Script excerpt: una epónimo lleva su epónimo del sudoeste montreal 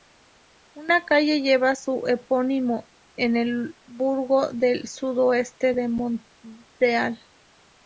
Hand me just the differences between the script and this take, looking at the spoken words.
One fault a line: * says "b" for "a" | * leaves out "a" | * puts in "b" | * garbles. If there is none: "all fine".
* says "calle" for "epónimo"
* puts in "en el burgo"
* puts in "de"